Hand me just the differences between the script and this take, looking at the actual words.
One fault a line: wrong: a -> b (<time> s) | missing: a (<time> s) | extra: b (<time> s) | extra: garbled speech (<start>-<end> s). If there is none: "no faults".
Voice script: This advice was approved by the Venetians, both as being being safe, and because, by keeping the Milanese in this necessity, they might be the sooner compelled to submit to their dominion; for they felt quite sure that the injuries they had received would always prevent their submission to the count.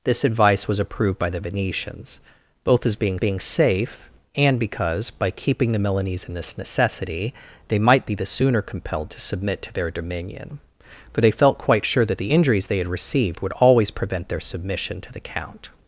no faults